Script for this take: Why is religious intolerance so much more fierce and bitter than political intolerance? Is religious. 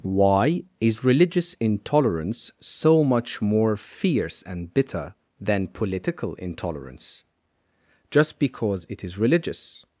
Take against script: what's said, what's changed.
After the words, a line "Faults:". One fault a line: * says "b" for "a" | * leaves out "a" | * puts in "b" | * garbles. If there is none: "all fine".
Why is religious intolerance so much more fierce and bitter than political intolerance? Just because it is religious.
Faults:
* puts in "Just because it"